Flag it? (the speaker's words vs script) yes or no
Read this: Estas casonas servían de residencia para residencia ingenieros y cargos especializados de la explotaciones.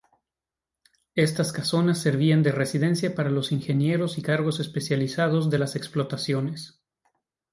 yes